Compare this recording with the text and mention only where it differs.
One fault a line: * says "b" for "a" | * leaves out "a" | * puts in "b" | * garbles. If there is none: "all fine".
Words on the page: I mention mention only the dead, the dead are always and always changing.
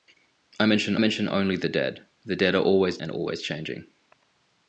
all fine